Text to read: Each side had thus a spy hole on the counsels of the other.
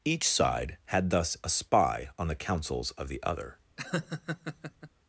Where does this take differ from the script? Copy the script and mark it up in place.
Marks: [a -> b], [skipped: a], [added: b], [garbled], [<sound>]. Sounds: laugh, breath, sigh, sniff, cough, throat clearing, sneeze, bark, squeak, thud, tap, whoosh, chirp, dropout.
Each side had thus a spy [skipped: hole] on the counsels of the other. [laugh]